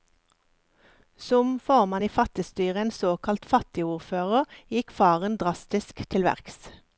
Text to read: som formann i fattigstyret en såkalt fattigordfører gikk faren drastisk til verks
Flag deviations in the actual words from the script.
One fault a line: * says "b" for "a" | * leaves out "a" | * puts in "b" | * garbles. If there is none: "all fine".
all fine